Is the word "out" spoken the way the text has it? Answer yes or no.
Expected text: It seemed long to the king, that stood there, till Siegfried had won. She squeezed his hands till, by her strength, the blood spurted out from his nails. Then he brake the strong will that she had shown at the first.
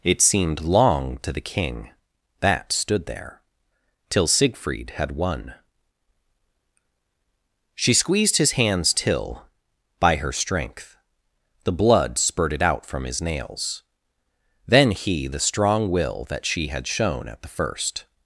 yes